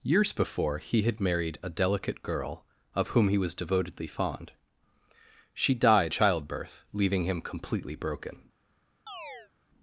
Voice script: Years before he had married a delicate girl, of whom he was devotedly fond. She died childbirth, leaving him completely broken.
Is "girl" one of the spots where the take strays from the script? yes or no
no